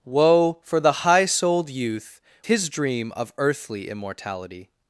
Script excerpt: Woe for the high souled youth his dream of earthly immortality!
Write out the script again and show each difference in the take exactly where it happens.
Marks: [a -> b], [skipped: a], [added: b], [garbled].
Woe for the high souled youth his dream of earthly immortality!